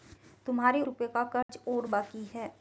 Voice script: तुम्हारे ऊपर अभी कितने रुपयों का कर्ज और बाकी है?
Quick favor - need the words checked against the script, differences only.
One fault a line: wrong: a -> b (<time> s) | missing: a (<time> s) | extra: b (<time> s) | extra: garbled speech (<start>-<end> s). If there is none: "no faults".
missing: ऊपर अभी कितने (0.8 s)